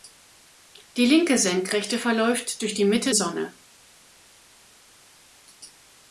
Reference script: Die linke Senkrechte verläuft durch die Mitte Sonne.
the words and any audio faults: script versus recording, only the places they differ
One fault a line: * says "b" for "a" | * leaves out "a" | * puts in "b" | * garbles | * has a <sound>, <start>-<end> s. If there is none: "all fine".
all fine